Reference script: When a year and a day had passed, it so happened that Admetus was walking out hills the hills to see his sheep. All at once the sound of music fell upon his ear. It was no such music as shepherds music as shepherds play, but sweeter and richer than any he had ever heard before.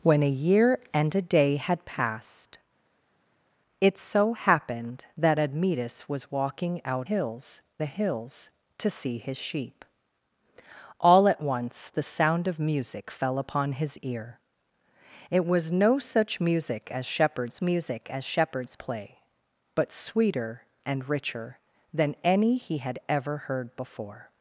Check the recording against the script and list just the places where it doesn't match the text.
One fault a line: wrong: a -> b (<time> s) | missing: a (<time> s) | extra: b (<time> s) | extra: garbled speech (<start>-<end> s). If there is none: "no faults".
no faults